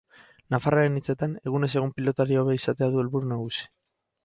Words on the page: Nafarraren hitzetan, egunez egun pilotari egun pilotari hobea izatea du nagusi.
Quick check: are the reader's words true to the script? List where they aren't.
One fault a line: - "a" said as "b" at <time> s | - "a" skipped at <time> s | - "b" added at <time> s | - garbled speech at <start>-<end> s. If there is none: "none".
- "egun pilotari" skipped at 2.4 s
- "helburu" added at 3.0 s